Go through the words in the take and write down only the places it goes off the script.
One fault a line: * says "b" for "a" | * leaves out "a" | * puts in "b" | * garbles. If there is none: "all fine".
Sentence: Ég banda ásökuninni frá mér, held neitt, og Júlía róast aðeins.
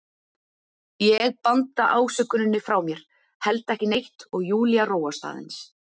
* puts in "ekki"